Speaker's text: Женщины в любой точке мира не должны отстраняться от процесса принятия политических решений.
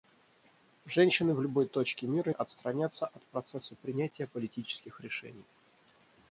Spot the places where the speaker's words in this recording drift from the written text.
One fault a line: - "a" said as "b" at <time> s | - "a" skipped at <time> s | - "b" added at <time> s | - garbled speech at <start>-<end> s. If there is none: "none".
- "не должны" skipped at 2.3 s